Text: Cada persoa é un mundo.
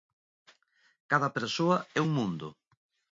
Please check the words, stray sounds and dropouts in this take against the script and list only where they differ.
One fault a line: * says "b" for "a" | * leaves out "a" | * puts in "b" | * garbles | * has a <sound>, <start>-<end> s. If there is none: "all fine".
all fine